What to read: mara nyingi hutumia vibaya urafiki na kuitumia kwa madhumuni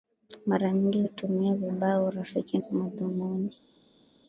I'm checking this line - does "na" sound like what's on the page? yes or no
no